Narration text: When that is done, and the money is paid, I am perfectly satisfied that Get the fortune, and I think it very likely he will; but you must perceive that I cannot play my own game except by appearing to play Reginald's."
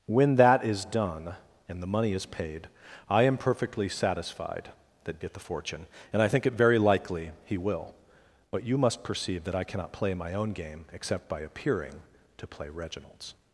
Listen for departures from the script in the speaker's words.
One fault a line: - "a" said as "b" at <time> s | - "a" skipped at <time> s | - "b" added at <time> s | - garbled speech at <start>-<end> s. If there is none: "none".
none